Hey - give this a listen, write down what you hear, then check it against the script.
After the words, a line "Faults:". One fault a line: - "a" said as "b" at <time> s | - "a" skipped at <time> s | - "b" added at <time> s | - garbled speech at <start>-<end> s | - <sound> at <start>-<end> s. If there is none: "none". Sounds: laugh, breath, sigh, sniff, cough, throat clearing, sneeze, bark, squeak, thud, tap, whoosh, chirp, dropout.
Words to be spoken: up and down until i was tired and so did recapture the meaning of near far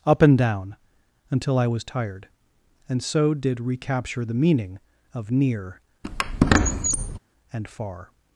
up and down until i was tired and so did recapture the meaning of near and far
Faults:
- squeak at 6.0-7.2 s
- "and" added at 7.5 s